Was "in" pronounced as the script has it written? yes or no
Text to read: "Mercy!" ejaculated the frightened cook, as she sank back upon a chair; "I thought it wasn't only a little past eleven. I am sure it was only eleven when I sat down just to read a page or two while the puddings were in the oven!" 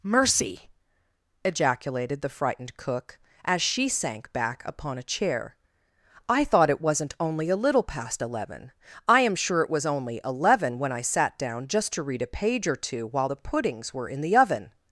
yes